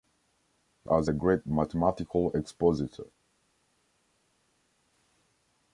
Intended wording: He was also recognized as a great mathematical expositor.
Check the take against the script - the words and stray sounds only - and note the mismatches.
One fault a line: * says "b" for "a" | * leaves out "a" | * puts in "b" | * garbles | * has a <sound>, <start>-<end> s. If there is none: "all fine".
* leaves out "was also recognized"